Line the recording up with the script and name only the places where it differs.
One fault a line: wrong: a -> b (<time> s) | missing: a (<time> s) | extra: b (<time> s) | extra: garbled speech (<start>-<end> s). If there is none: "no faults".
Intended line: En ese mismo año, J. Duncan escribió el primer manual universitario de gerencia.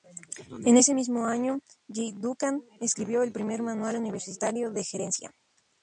no faults